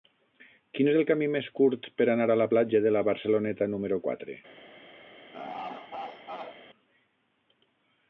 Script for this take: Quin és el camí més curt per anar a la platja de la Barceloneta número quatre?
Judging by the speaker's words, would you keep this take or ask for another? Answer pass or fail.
pass